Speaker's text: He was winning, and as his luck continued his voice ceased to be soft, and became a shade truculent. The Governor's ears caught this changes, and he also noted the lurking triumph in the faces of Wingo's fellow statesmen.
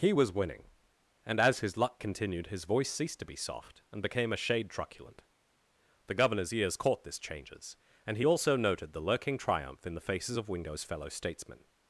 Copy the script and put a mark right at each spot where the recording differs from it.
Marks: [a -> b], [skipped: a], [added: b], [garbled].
He was winning, and as his luck continued his voice ceased to be soft, and became a shade truculent. The Governor's ears caught this changes, and he also noted the lurking triumph in the faces of Wingo's fellow statesmen.